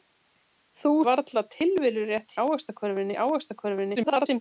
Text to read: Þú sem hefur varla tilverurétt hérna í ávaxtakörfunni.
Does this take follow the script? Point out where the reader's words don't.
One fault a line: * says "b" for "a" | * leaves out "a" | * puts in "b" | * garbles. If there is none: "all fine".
* leaves out "sem hefur"
* says "ávaxtakörfunni" for "hérna"
* garbles